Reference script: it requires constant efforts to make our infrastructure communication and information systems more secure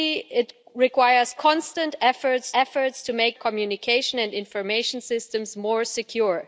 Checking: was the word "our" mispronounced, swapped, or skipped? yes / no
yes